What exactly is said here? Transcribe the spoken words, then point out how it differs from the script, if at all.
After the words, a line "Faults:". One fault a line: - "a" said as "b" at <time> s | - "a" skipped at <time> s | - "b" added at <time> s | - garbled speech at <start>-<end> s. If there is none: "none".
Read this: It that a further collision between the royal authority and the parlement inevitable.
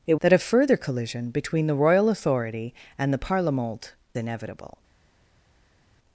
It that a further collision between the royal authority and the parlement inevitable.
Faults:
none